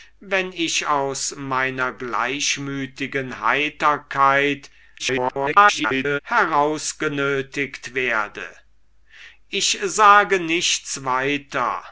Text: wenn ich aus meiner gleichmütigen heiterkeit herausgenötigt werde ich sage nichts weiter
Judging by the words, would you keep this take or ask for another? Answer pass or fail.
fail